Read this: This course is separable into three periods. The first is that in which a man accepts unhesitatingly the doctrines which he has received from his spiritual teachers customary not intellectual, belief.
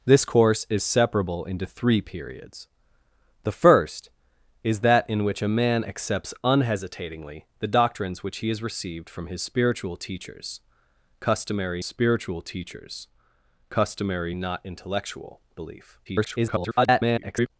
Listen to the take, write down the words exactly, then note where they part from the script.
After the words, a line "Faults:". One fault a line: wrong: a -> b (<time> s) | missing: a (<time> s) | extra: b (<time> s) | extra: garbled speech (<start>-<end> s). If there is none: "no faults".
This course is separable into three periods. The first is that in which a man accepts unhesitatingly the doctrines which he has received from his spiritual teachers customary spiritual teachers customary not intellectual, belief. [garbled]
Faults:
extra: spiritual teachers customary (11.8 s)
extra: garbled speech (16.1-17.5 s)